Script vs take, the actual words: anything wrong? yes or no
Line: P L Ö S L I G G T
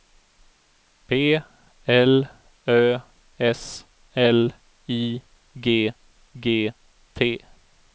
no